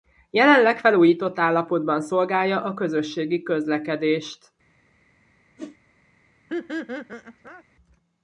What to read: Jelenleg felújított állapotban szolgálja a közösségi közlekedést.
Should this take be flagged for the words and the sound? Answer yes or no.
yes